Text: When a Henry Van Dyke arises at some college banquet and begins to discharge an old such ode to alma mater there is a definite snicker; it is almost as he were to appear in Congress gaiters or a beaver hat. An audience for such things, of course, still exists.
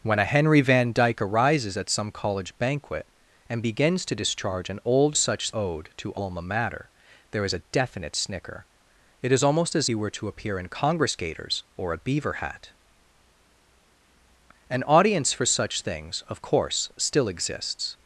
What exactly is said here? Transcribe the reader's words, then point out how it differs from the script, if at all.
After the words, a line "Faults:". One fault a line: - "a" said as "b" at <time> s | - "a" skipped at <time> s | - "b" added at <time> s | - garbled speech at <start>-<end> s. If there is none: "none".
When a Henry Van Dyke arises at some college banquet and begins to discharge an old such ode to alma mater there is a definite snicker; it is almost as he were to appear in Congress gaiters or a beaver hat. An audience for such things, of course, still exists.
Faults:
none